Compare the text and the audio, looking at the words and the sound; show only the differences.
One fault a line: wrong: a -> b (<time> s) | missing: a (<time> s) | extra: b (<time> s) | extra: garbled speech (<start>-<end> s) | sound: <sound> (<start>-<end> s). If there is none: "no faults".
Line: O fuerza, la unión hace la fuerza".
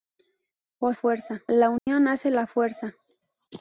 sound: dropout (1.8-1.9 s)